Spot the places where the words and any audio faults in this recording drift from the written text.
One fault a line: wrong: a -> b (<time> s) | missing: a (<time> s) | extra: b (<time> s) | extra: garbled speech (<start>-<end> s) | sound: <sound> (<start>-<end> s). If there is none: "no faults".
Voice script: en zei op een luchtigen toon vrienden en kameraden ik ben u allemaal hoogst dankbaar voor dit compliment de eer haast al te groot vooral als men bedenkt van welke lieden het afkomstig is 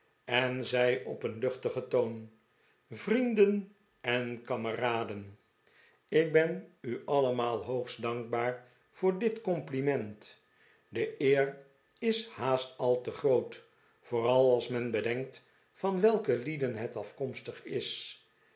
extra: is (12.0 s)